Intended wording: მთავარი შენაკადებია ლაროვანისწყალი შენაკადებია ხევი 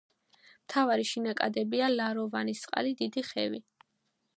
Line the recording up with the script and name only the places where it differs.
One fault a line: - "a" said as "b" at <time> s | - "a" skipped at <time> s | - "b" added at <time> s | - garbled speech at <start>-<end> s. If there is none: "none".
- "შენაკადებია" said as "დიდი" at 3.0 s